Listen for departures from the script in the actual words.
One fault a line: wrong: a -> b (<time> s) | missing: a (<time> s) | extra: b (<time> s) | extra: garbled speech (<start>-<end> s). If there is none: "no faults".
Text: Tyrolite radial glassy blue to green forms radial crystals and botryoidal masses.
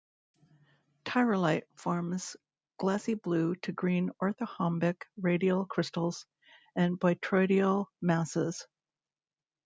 wrong: radial -> forms (1.8 s)
wrong: forms -> orthorhombic (4.2 s)